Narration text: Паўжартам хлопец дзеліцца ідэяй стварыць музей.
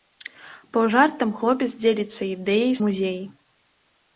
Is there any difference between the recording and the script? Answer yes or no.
yes